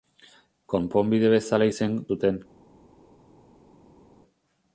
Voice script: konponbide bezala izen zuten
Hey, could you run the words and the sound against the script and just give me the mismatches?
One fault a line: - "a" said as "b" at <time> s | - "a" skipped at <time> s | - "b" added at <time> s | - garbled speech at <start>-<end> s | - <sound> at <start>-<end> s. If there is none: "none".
none